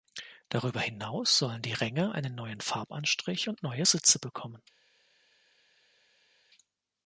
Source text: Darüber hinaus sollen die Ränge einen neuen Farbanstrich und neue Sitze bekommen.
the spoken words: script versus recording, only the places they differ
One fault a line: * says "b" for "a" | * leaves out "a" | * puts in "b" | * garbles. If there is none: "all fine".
all fine